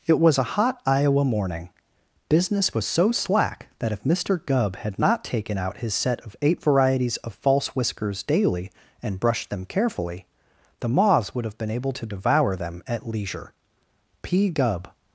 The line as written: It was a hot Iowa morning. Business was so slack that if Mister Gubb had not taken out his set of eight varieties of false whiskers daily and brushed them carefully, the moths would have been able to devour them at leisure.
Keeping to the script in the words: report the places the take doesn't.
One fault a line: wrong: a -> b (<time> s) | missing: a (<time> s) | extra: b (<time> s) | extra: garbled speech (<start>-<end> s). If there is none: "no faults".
extra: P Gubb (14.2 s)